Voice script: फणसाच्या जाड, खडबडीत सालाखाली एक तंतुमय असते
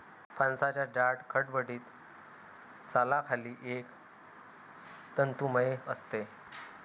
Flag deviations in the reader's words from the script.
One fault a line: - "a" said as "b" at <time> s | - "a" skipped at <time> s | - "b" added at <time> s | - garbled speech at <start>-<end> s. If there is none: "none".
none